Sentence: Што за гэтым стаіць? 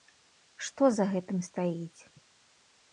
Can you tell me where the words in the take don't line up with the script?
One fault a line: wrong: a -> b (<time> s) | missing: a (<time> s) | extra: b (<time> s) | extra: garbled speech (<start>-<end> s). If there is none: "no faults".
no faults